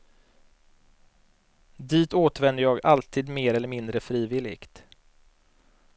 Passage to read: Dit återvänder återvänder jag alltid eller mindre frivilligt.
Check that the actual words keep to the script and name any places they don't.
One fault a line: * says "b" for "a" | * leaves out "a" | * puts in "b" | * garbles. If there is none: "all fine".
* leaves out "återvänder"
* puts in "mer"